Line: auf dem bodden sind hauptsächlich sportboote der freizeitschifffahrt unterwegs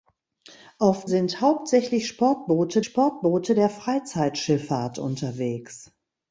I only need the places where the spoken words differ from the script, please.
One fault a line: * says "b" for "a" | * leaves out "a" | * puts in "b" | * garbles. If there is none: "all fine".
* leaves out "dem bodden"
* puts in "sportboote"